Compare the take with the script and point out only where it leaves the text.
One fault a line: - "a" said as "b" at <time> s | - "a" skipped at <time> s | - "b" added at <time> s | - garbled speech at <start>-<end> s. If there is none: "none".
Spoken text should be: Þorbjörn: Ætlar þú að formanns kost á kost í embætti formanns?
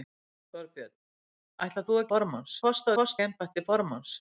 none